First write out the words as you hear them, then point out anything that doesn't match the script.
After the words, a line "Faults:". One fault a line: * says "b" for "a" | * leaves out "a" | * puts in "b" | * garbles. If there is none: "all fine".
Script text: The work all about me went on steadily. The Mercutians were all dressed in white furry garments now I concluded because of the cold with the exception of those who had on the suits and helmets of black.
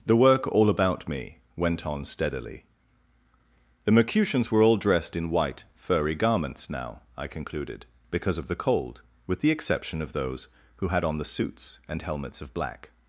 The work all about me went on steadily. The Mercutians were all dressed in white furry garments now I concluded because of the cold with the exception of those who had on the suits and helmets of black.
Faults:
all fine